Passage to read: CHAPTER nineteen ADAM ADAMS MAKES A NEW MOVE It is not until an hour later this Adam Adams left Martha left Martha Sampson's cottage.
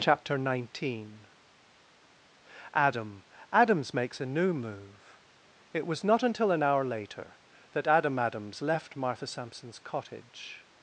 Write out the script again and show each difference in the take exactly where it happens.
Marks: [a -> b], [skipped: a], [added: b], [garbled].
CHAPTER nineteen ADAM ADAMS MAKES A NEW MOVE It [is -> was] not until an hour later [this -> that] Adam Adams left Martha [skipped: left Martha] Sampson's cottage.